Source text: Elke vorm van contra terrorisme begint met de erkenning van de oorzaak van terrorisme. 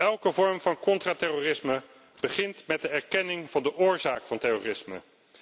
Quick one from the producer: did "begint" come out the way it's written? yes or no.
yes